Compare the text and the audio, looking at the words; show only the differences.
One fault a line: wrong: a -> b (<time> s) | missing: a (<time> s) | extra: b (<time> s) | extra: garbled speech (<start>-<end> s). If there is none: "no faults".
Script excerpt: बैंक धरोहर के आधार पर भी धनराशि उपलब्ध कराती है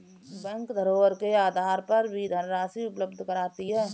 no faults